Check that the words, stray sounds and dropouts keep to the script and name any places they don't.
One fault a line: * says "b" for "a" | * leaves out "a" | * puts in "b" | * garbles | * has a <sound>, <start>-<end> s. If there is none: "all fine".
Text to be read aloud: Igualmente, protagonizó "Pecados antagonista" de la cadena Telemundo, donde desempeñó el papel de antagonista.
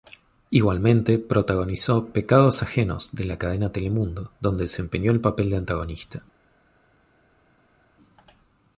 * says "ajenos" for "antagonista"